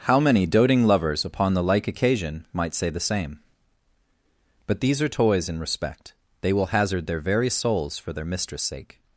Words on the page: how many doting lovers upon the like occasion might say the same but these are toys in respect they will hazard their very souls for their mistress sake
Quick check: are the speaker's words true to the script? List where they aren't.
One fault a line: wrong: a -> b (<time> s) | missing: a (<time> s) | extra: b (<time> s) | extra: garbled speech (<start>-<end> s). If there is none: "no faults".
no faults